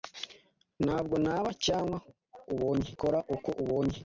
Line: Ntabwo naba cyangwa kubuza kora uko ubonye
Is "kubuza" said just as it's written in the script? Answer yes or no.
no